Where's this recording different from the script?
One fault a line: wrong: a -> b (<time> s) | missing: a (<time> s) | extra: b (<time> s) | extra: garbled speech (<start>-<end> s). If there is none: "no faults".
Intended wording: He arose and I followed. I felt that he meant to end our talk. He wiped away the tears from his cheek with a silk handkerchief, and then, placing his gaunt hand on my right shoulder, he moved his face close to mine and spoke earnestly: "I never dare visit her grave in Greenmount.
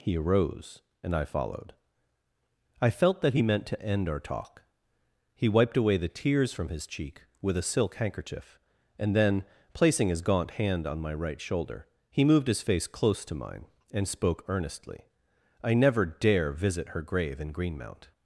no faults